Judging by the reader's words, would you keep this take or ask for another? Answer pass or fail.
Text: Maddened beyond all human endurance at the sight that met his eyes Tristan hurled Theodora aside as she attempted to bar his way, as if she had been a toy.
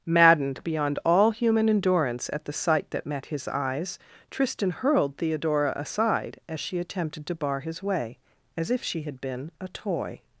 pass